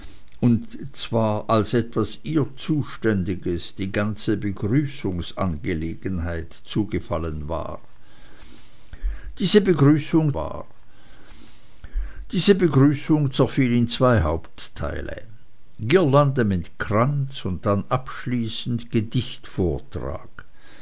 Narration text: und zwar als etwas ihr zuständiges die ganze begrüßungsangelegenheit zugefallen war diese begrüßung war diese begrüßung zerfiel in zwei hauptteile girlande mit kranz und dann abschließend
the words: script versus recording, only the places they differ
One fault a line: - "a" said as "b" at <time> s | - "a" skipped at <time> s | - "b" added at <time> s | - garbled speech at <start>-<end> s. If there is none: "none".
none